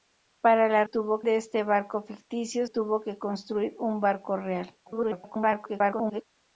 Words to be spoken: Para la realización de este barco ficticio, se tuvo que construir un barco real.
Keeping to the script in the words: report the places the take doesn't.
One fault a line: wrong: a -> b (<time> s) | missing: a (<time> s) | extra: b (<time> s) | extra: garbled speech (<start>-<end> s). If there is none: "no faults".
wrong: realización -> tuvo (0.8 s)
missing: se (2.6 s)
extra: garbled speech (4.8-6.2 s)